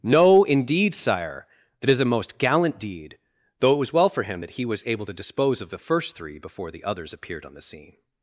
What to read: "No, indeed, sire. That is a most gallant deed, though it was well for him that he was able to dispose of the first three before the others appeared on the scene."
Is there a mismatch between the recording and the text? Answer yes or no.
no